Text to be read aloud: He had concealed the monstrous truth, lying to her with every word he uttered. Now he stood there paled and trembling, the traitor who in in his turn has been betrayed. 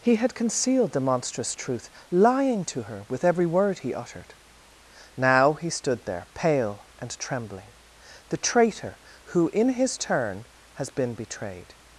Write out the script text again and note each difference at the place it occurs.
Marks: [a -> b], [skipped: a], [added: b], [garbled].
He had concealed the monstrous truth, lying to her with every word he uttered. Now he stood there [paled -> pale] and trembling, the traitor who in [skipped: in] his turn has been betrayed.